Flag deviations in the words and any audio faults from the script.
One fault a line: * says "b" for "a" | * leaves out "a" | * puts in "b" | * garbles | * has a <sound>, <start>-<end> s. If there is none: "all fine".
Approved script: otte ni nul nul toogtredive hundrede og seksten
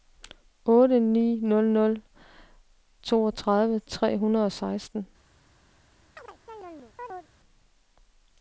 * puts in "tre"
* has a chirp, 6.2-7.3 s